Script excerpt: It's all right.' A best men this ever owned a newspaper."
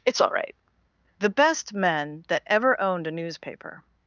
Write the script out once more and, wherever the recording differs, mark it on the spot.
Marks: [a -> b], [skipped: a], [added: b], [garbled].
It's all right.' [A -> The] best men [this -> that] ever owned a newspaper."